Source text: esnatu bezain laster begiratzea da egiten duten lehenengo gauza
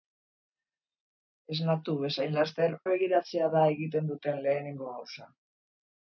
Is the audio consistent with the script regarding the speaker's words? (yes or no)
yes